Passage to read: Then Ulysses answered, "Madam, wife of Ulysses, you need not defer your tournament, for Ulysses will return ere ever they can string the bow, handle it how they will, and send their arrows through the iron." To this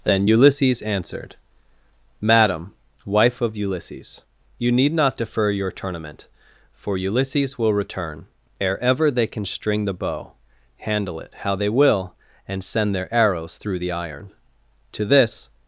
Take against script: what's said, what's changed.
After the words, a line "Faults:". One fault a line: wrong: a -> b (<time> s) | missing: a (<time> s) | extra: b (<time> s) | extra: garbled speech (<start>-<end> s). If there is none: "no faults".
Then Ulysses answered, "Madam, wife of Ulysses, you need not defer your tournament, for Ulysses will return ere ever they can string the bow, handle it how they will, and send their arrows through the iron." To this
Faults:
no faults